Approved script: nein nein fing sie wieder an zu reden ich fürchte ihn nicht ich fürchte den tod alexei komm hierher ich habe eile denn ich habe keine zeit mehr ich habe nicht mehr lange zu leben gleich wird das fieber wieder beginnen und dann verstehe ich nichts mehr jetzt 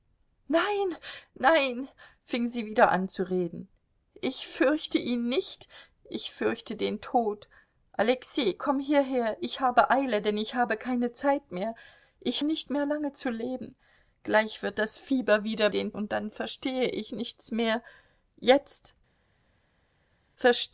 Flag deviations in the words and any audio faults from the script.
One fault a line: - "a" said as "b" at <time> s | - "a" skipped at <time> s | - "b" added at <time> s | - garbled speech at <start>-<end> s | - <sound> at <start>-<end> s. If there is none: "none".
- "habe" skipped at 12.4 s
- "beginnen" said as "den" at 15.7 s